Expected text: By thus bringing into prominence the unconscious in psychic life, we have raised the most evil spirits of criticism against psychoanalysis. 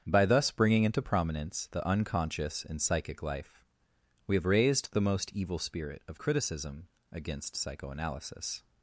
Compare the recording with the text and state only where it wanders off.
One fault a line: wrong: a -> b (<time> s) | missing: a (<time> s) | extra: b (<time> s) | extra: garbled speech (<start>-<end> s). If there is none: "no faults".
wrong: spirits -> spirit (5.6 s)